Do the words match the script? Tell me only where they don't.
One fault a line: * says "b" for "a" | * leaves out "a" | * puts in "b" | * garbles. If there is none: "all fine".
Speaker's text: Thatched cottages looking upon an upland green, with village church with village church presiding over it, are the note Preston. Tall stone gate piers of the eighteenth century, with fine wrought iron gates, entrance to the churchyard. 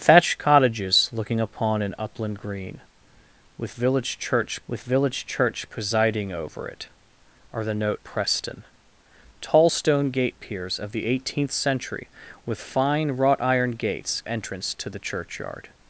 all fine